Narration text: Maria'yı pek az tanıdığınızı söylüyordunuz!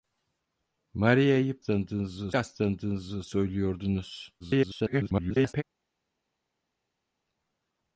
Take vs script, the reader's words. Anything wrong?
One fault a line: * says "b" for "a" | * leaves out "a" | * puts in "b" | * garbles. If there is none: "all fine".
* says "tanıdığınızı" for "pek"
* garbles